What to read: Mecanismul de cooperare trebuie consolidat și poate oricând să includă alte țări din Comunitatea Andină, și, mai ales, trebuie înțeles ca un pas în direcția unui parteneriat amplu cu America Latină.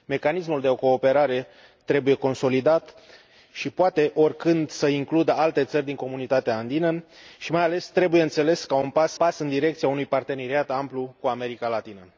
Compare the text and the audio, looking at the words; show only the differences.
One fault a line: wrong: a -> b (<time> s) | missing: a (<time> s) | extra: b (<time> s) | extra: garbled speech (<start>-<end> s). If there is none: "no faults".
extra: pas (9.1 s)